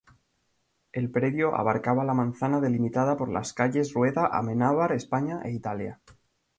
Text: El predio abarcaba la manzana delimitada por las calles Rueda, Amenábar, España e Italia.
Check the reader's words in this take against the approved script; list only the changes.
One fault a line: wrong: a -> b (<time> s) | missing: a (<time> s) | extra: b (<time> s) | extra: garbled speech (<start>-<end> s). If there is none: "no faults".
no faults